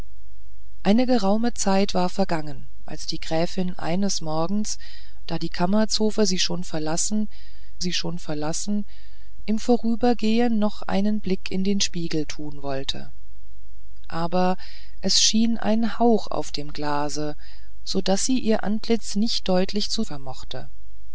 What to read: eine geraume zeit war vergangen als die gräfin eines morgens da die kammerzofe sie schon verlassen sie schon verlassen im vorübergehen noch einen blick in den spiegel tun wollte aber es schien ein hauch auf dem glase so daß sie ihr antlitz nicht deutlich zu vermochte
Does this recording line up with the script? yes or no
yes